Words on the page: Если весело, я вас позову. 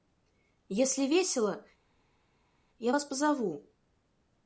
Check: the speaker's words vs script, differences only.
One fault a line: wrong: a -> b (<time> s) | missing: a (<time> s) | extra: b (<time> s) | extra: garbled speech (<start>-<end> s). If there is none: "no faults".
no faults